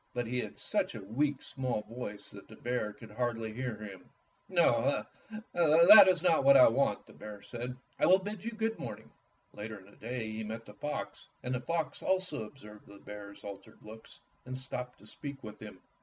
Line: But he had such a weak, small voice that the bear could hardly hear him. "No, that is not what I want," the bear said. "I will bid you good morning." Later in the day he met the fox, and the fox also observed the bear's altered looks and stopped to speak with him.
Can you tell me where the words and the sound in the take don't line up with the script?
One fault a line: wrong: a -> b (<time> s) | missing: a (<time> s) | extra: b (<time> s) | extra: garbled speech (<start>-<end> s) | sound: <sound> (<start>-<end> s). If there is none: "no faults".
no faults